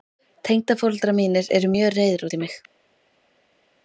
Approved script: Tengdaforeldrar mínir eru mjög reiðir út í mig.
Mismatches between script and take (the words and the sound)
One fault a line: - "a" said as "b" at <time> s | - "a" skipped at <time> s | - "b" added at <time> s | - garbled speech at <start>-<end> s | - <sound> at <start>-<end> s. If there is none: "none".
none